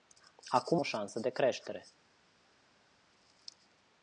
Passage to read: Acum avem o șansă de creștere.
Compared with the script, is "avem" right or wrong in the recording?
wrong